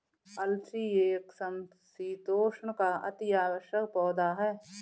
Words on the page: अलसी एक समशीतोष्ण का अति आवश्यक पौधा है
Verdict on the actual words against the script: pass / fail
pass